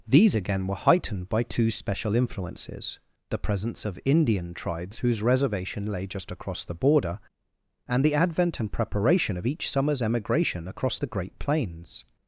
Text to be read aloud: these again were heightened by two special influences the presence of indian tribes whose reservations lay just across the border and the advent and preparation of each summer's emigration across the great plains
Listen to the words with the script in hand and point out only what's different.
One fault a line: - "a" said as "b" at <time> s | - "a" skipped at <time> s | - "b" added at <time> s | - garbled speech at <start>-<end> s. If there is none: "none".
- "reservations" said as "reservation" at 5.2 s